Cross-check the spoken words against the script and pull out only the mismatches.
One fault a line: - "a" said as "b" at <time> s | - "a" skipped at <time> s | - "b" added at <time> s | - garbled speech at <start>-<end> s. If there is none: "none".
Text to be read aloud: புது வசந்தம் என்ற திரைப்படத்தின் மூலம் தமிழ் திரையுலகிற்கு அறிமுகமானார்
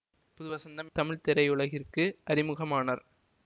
- "என்ற திரைப்படத்தின் மூலம்" skipped at 0.9 s